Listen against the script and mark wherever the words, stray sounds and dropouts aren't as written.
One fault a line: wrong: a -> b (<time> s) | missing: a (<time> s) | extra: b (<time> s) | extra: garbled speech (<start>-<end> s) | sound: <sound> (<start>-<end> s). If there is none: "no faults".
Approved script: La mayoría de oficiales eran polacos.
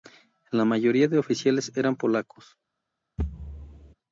sound: thud (3.2-3.9 s)